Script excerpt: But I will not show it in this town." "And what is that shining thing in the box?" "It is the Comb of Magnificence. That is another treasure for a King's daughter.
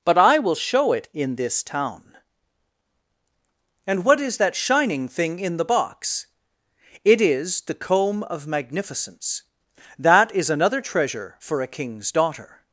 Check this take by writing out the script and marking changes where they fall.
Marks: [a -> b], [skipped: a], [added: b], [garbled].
But I will [skipped: not] show it in this town." "And what is that shining thing in the box?" "It is the Comb of Magnificence. That is another treasure for a King's daughter.